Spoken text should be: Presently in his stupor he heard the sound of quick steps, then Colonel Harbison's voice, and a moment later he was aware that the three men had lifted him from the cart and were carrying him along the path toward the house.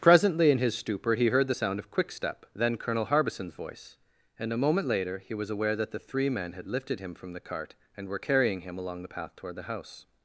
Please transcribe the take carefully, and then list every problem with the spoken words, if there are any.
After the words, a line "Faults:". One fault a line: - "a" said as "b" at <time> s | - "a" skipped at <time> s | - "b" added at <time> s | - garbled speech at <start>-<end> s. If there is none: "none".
Presently in his stupor he heard the sound of quick step, then Colonel Harbison's voice, and a moment later he was aware that the three men had lifted him from the cart and were carrying him along the path toward the house.
Faults:
- "steps" said as "step" at 2.1 s